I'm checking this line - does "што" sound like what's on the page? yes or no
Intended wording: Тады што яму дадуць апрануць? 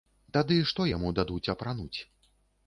yes